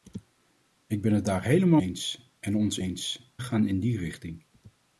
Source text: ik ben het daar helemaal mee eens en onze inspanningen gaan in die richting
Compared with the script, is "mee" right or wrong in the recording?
wrong